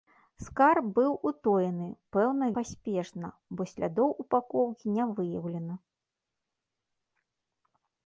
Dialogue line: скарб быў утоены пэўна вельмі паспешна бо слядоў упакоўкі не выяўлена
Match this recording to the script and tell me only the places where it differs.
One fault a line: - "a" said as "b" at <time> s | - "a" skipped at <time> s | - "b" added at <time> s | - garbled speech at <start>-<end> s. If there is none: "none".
- "вельмі" skipped at 2.5 s